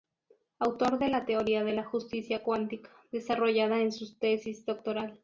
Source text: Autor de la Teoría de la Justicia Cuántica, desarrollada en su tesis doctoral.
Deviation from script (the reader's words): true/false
false